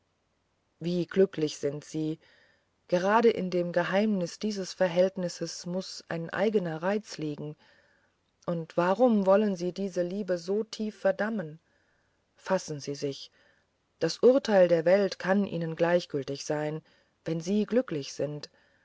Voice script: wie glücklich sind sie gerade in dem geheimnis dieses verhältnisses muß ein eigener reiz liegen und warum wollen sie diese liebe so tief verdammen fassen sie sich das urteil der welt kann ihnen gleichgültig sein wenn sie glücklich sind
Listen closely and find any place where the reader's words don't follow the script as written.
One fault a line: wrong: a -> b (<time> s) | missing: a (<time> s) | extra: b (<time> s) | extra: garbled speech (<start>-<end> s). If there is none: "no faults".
no faults